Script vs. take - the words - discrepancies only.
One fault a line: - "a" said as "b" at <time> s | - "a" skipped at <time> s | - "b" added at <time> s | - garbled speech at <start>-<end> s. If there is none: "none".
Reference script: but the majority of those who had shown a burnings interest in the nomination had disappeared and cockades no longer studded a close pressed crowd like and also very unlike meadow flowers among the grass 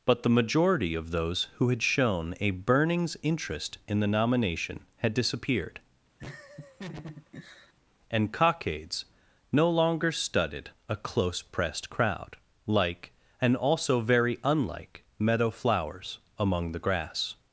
none